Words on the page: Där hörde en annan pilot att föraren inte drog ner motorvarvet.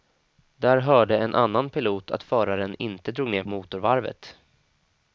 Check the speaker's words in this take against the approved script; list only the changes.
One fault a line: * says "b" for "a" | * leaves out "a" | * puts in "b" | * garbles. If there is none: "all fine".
all fine